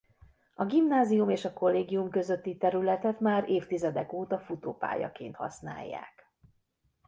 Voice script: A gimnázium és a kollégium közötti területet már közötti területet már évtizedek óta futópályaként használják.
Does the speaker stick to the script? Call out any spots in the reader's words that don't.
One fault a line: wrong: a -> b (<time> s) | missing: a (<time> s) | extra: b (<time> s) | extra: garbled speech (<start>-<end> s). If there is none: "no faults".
missing: közötti területet már (3.5 s)